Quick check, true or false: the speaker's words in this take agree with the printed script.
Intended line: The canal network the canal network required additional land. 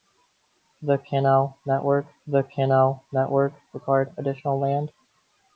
true